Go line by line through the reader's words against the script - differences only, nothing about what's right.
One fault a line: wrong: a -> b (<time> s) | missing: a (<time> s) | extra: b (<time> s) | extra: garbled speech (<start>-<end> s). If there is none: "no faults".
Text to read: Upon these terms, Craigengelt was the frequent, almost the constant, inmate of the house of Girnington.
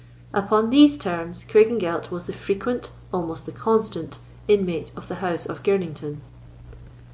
no faults